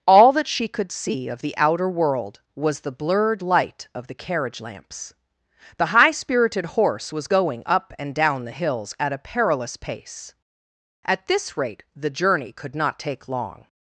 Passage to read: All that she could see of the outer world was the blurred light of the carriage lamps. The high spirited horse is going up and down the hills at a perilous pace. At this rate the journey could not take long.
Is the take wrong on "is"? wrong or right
wrong